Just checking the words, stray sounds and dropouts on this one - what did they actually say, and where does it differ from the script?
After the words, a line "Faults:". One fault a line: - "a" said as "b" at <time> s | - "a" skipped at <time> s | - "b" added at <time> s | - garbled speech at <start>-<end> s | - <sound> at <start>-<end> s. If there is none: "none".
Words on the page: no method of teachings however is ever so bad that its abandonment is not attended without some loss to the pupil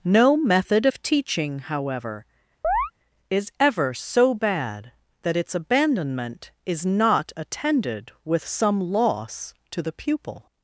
no method of teaching however is ever so bad that its abandonment is not attended with some loss to the pupil
Faults:
- "teachings" said as "teaching" at 1.0 s
- chirp at 2.6-2.9 s
- "without" said as "with" at 8.2 s